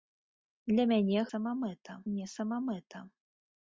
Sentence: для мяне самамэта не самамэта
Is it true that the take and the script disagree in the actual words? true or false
false